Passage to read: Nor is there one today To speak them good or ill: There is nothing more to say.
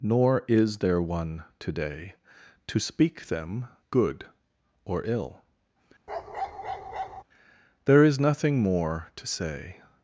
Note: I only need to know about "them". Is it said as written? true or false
true